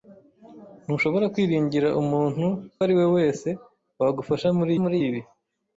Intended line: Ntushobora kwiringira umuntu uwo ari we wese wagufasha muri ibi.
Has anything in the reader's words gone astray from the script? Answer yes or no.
yes